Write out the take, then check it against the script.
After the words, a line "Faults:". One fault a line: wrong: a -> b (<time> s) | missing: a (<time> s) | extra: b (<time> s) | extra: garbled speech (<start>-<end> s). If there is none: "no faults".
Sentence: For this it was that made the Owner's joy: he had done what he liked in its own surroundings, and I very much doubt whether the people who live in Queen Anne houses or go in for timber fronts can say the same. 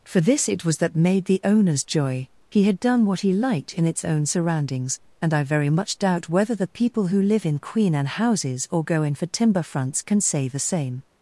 For this it was that made the Owner's joy: he had done what he liked in its own surroundings, and I very much doubt whether the people who live in Queen Anne houses or go in for timber fronts can say the same.
Faults:
no faults